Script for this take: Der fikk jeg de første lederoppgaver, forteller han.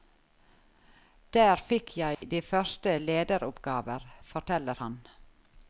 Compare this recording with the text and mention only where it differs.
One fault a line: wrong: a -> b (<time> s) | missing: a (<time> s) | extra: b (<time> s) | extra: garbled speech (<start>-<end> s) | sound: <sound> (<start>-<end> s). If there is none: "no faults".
sound: dropout (2.1-2.2 s)